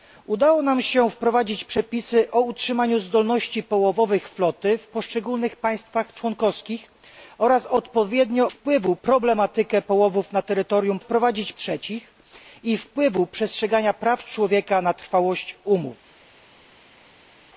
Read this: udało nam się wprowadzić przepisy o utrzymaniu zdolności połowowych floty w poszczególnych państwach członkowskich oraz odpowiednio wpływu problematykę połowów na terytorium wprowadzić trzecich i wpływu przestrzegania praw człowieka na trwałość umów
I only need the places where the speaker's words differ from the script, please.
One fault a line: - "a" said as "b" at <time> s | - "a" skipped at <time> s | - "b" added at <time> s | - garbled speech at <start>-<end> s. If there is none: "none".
none